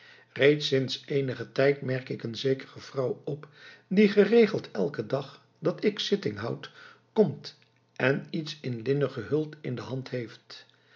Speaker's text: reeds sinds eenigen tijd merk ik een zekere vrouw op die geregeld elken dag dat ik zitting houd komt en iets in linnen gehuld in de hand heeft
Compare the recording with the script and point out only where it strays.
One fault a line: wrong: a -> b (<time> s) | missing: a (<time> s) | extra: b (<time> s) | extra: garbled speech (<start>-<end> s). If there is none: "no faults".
no faults